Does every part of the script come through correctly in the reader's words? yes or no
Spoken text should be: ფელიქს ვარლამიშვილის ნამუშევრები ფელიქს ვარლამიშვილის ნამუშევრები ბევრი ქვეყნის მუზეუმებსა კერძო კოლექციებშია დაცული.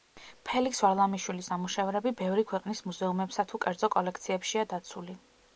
no